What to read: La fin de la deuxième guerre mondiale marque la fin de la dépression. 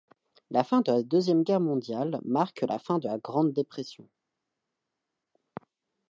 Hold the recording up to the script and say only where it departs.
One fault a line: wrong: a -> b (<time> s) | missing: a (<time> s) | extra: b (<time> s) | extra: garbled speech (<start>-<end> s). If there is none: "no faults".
extra: grande (3.2 s)